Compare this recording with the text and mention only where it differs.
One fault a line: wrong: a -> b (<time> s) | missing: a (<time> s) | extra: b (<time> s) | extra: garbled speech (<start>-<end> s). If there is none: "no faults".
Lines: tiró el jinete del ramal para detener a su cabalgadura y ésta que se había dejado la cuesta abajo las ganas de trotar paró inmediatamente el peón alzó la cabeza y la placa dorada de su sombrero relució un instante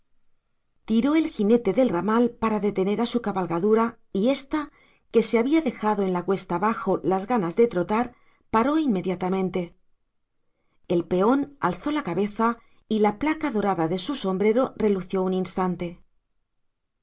extra: en (6.0 s)